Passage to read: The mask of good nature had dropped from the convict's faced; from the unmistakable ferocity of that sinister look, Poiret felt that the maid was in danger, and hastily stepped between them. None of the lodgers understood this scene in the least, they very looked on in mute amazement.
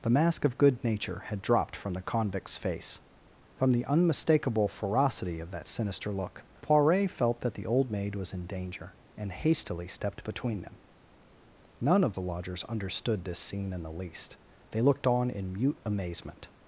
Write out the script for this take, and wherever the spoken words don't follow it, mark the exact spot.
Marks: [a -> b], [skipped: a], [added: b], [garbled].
The mask of good nature had dropped from the convict's [faced; -> face] from the unmistakable ferocity of that sinister look, Poiret felt that the [added: old] maid was in danger, and hastily stepped between them. None of the lodgers understood this scene in the least, they [skipped: very] looked on in mute amazement.